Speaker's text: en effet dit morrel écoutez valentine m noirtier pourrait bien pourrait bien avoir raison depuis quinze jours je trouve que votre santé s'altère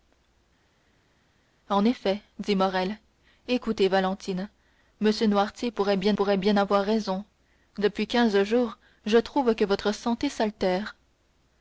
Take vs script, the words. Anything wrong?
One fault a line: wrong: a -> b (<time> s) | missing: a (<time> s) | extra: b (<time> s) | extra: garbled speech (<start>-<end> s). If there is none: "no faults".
no faults